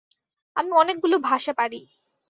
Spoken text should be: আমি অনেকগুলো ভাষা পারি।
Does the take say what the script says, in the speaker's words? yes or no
yes